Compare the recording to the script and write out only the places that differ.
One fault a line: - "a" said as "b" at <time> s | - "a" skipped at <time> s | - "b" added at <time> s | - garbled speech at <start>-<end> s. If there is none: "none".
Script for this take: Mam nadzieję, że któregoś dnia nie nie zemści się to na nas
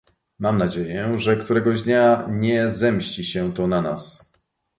- "nie" skipped at 2.7 s